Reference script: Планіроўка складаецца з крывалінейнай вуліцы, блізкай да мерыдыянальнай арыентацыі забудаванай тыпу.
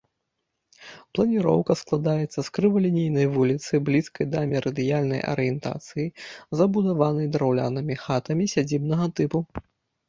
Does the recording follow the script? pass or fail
fail